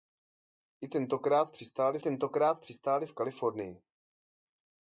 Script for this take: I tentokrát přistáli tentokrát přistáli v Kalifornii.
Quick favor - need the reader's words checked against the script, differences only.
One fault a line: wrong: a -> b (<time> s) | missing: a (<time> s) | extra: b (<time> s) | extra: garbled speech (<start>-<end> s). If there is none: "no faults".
no faults